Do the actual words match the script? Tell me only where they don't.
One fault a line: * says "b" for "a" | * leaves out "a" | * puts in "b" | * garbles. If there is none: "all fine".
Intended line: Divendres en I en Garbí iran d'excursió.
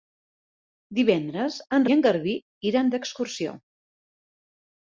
all fine